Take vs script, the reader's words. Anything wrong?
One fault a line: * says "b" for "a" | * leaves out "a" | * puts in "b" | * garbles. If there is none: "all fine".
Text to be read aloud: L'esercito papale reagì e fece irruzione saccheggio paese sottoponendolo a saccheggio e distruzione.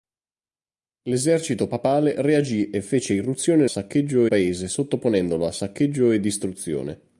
all fine